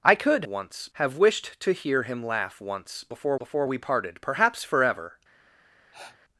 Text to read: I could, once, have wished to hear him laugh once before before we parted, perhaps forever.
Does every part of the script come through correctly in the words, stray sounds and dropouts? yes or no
no